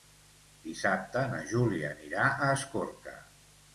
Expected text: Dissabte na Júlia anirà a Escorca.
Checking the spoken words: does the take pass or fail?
pass